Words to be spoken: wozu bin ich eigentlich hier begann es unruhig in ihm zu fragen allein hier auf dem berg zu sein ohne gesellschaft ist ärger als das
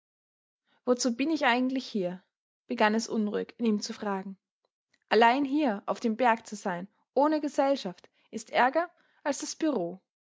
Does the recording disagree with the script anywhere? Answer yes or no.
no